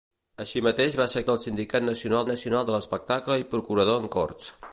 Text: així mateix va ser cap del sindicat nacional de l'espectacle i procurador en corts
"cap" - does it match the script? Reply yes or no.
no